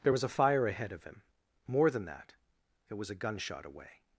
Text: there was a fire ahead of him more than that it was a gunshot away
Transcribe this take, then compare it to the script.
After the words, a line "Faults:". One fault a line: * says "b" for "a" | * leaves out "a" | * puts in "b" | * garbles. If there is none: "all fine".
there was a fire ahead of him more than that it was a gunshot away
Faults:
all fine